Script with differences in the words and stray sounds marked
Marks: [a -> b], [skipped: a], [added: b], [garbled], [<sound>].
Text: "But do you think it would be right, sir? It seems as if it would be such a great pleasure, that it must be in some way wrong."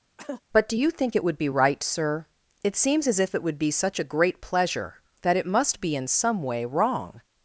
[cough] "But do you think it would be right, sir? It seems as if it would be such a great pleasure, that it must be in some way wrong."